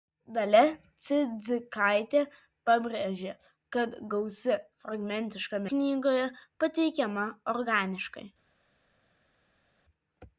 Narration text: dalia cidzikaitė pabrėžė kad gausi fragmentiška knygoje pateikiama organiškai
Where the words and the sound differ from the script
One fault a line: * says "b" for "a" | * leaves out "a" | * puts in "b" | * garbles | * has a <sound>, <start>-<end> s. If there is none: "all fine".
all fine